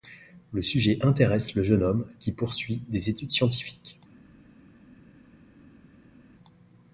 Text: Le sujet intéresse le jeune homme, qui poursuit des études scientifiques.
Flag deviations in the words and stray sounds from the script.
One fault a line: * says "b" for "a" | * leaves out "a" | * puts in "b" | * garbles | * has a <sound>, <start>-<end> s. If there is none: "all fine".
all fine